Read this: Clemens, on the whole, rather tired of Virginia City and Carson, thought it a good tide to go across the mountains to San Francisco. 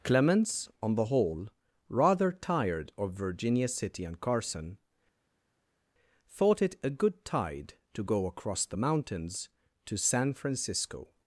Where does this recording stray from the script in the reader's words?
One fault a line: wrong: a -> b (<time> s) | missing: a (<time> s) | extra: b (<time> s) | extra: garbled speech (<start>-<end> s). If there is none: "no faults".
no faults